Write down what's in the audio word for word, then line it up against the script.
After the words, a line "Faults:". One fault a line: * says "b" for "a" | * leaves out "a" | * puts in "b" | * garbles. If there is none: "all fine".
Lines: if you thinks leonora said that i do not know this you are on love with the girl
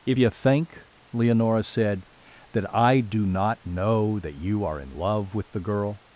if you think leonora said that i do not know that you are in love with the girl
Faults:
* says "think" for "thinks"
* says "that" for "this"
* says "in" for "on"